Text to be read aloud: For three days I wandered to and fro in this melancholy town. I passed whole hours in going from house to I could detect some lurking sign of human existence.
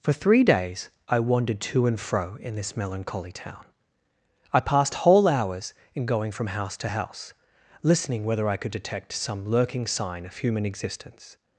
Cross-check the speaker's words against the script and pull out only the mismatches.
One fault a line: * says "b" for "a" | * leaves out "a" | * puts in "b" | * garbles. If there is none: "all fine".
* puts in "house listening whether"